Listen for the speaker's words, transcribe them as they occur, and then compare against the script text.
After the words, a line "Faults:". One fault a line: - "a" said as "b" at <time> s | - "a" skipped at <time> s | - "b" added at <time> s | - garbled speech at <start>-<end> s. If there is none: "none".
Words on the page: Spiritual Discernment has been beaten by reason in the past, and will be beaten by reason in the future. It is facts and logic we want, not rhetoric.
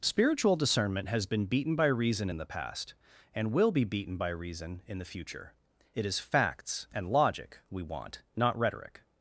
Spiritual Discernment has been beaten by reason in the past, and will be beaten by reason in the future. It is facts and logic we want, not rhetoric.
Faults:
none